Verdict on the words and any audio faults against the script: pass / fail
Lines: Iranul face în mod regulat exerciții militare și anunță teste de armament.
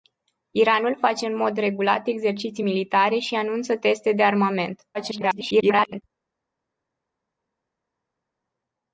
fail